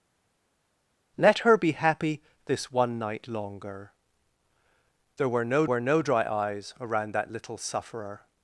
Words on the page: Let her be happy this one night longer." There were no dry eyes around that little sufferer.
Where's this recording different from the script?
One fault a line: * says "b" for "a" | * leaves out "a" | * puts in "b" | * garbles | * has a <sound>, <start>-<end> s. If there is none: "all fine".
* puts in "were no"